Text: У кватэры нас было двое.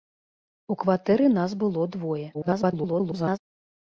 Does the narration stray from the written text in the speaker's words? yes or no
yes